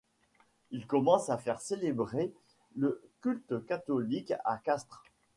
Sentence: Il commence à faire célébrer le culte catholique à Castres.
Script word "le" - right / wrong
right